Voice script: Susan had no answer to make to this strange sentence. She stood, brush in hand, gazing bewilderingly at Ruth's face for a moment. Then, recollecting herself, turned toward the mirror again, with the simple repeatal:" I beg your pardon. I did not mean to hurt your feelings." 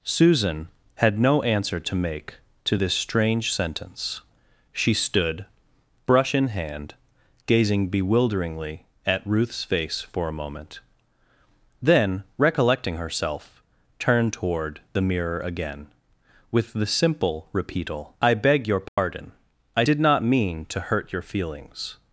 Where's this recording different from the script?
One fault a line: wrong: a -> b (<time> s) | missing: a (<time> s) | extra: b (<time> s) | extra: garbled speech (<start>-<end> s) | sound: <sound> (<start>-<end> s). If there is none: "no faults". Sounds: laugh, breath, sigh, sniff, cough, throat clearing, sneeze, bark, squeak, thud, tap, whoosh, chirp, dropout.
sound: dropout (18.9-19.0 s)